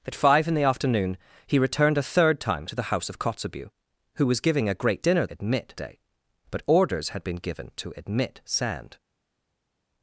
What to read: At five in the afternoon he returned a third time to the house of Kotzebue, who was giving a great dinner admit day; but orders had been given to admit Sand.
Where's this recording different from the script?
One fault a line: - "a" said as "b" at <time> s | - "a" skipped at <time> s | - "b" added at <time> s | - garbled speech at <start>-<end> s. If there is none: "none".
none